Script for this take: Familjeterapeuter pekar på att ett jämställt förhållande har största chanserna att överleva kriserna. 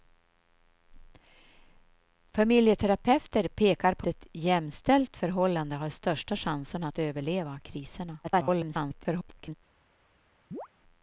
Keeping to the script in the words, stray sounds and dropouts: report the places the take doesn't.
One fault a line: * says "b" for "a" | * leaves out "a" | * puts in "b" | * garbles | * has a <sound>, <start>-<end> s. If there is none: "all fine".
* leaves out "att"
* garbles
* has a chirp, 10.5-10.7 s